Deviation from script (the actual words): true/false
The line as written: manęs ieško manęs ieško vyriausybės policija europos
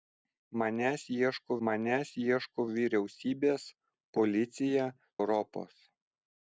false